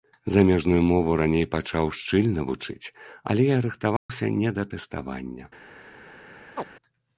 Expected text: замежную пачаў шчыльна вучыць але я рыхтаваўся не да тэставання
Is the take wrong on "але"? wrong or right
right